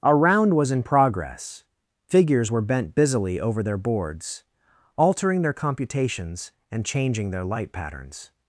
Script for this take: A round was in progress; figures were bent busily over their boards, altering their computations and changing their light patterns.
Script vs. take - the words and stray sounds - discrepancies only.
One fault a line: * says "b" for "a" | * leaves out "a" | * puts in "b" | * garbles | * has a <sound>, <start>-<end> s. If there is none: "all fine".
all fine